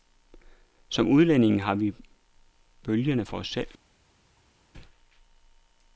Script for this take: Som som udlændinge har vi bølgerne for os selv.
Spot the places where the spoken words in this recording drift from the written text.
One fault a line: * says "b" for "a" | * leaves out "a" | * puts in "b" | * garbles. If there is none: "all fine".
* leaves out "som"